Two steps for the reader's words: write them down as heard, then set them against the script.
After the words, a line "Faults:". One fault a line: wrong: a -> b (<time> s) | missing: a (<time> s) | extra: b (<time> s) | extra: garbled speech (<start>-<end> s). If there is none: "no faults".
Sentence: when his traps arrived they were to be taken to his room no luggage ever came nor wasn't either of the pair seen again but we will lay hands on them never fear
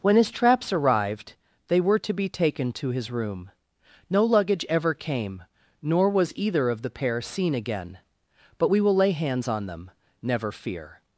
when his traps arrived they were to be taken to his room no luggage ever came nor was either of the pair seen again but we will lay hands on them never fear
Faults:
wrong: wasn't -> was (6.1 s)